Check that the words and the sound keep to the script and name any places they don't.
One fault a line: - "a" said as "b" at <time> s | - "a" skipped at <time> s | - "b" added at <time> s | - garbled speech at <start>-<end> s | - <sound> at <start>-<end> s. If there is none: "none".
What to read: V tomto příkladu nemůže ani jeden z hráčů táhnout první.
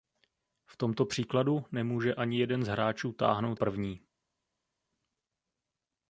none